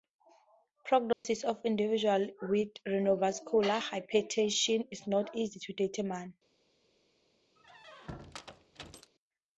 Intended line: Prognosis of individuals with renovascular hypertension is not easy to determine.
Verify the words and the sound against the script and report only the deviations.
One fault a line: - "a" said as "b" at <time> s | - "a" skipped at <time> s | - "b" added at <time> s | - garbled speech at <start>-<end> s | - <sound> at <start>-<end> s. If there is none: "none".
- dropout at 1.1-1.2 s
- squeak at 7.6-9.1 s